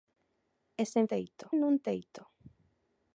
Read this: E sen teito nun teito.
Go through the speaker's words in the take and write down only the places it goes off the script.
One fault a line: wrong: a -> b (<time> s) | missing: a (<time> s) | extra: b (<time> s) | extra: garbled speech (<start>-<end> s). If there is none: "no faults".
no faults